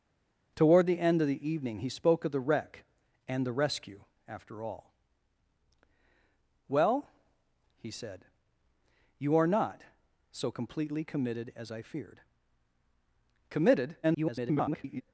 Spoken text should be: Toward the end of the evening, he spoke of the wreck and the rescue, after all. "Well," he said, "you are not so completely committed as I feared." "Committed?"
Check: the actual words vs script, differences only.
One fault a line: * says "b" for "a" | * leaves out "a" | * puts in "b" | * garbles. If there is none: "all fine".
* garbles